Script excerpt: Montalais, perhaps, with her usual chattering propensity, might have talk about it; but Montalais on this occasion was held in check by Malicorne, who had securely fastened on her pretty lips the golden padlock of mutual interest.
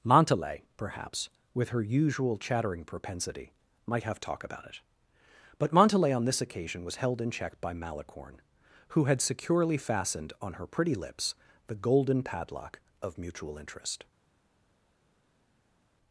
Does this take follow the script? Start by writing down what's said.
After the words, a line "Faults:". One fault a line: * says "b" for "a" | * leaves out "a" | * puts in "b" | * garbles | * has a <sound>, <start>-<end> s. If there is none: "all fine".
Montalais, perhaps, with her usual chattering propensity, might have talk about it; but Montalais on this occasion was held in check by Malicorne, who had securely fastened on her pretty lips the golden padlock of mutual interest.
Faults:
all fine